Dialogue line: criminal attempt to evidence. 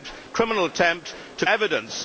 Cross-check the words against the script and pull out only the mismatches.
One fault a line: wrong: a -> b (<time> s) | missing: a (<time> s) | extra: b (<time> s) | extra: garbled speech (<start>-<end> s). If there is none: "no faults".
no faults